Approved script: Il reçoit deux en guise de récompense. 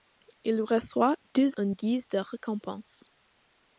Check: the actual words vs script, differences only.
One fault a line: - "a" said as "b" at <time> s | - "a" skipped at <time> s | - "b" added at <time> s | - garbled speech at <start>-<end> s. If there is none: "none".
none